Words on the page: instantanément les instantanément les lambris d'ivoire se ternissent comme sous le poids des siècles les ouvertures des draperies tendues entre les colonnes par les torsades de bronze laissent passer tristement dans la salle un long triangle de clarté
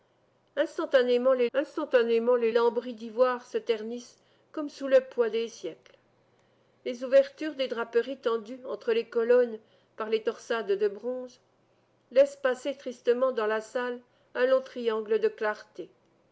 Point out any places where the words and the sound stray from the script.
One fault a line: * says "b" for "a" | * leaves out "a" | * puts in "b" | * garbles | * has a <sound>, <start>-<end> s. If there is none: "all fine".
all fine